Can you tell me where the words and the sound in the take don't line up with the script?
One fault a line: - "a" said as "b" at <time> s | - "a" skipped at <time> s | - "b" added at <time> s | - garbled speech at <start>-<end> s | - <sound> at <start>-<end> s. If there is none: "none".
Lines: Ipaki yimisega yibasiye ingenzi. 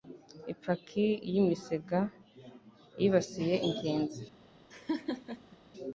- laugh at 4.7-5.6 s